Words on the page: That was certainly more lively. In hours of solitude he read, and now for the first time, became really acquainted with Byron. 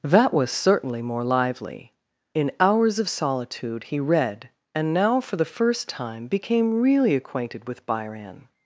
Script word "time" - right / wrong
right